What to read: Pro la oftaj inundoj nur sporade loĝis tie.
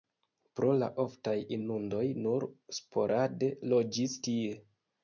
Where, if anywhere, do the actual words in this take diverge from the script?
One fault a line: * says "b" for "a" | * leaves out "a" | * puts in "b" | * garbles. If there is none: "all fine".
all fine